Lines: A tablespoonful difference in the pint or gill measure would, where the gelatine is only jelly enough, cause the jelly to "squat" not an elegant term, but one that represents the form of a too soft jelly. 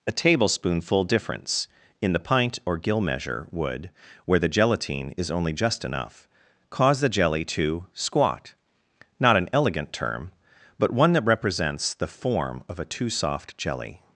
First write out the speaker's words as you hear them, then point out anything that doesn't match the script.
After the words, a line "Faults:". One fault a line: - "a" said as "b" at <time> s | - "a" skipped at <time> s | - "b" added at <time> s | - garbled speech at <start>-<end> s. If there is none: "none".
A tablespoonful difference in the pint or gill measure would, where the gelatine is only just enough, cause the jelly to "squat" not an elegant term, but one that represents the form of a too soft jelly.
Faults:
- "jelly" said as "just" at 5.5 s